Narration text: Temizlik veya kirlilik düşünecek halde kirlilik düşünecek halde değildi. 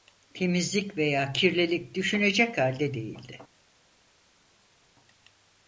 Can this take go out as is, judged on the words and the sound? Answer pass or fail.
fail